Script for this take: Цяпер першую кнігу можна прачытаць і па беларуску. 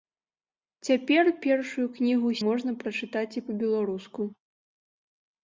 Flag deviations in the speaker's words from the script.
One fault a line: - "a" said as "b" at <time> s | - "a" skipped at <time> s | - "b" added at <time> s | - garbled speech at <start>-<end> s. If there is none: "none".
none